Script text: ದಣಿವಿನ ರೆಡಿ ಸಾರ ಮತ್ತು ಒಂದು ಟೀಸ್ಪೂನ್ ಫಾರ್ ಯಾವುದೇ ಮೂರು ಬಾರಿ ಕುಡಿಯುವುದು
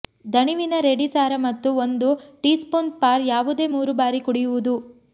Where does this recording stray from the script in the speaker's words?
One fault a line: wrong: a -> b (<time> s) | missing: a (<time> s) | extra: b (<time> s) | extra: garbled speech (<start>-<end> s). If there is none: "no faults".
no faults